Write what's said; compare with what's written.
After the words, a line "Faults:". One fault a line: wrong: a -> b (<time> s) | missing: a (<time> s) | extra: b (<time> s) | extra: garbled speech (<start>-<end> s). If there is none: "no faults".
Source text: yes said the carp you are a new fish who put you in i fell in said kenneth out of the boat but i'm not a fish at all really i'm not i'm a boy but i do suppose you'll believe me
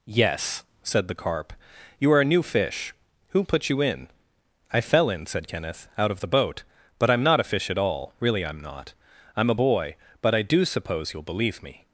yes said the carp you are a new fish who put you in i fell in said kenneth out of the boat but i'm not a fish at all really i'm not i'm a boy but i do suppose you'll believe me
Faults:
no faults